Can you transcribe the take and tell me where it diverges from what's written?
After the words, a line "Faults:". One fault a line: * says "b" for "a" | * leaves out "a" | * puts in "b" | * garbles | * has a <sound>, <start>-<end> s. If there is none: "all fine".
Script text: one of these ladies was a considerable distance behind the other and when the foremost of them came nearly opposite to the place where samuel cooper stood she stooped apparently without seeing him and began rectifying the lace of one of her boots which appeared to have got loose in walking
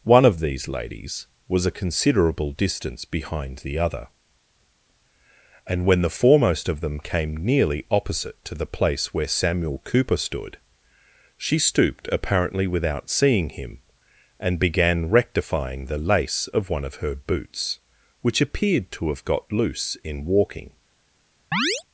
one of these ladies was a considerable distance behind the other and when the foremost of them came nearly opposite to the place where samuel cooper stood she stooped apparently without seeing him and began rectifying the lace of one of her boots which appeared to have got loose in walking
Faults:
* has a chirp, 21.5-21.8 s